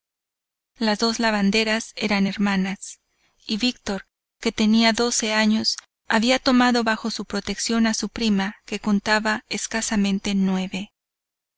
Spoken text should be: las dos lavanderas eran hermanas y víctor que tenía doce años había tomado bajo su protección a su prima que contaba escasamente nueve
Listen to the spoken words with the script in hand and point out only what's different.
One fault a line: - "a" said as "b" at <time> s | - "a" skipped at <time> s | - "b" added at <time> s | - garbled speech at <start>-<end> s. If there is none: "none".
none